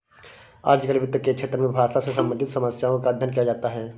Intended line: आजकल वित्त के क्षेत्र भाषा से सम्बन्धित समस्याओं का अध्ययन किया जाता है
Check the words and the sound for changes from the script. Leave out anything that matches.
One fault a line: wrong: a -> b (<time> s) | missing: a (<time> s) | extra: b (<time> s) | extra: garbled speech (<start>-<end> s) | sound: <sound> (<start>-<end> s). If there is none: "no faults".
extra: में (1.6 s)